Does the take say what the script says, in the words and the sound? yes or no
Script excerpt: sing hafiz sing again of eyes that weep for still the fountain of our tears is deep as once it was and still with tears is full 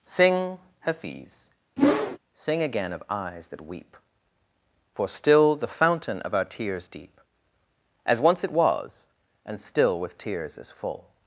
no